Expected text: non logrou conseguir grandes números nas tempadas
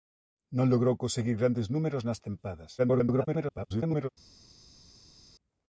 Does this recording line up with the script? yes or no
no